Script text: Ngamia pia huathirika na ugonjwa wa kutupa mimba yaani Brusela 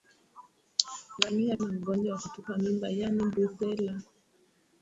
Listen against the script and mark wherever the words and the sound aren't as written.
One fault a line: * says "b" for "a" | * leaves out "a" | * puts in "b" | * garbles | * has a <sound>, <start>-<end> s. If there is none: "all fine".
* leaves out "pia huathirika"